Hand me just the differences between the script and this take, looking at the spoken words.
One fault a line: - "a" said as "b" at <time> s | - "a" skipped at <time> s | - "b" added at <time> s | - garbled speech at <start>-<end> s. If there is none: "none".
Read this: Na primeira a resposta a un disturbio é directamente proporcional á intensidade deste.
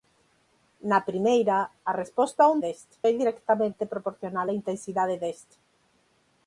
- "disturbio" said as "deste" at 2.6 s